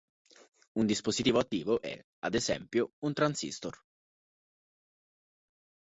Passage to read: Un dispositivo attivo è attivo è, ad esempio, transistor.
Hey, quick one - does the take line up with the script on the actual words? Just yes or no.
no